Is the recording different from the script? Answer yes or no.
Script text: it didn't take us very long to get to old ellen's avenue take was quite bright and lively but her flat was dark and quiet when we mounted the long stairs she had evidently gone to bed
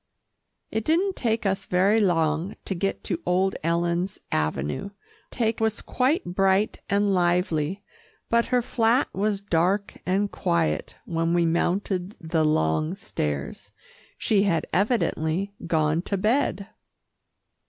no